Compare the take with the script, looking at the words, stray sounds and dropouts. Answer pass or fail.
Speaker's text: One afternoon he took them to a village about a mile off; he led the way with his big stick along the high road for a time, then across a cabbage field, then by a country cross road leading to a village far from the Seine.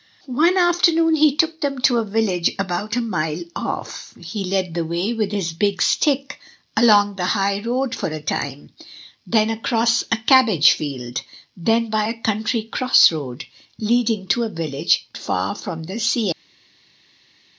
pass